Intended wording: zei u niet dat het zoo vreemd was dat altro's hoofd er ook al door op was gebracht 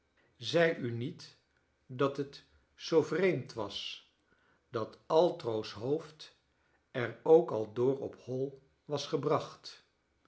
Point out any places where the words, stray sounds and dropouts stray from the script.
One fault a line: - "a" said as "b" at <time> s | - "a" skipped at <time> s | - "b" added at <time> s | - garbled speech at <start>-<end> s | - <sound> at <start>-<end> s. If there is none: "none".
- "hoi" added at 8.2 s